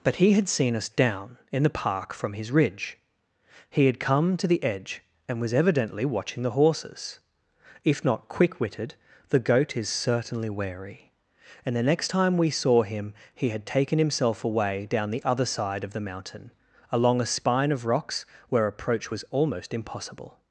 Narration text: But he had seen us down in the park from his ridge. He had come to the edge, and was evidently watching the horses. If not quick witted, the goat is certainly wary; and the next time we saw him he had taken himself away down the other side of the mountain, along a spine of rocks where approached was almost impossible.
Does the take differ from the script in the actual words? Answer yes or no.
yes